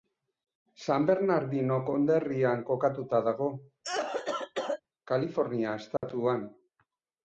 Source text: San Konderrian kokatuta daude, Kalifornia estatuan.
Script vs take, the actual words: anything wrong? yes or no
yes